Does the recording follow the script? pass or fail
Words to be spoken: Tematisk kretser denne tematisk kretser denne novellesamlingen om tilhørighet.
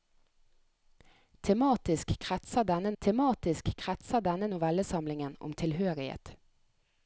pass